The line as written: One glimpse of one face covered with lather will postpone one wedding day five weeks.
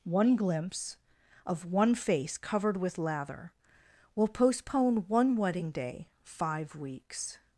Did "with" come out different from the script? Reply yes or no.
no